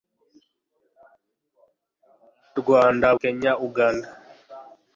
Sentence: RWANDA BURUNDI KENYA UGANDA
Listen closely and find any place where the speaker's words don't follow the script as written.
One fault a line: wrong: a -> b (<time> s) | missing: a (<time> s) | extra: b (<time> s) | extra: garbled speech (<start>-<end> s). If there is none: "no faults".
missing: BURUNDI (3.1 s)